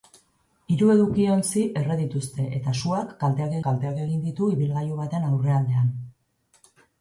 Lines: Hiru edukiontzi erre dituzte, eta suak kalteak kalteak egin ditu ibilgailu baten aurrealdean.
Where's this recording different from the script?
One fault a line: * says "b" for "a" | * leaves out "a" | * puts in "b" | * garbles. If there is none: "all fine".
all fine